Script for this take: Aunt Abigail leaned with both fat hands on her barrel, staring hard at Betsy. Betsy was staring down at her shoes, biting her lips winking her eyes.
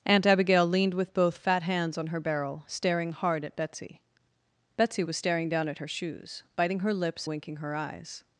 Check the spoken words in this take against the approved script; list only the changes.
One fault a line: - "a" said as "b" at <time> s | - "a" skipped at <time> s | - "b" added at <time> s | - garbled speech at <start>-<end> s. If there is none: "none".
none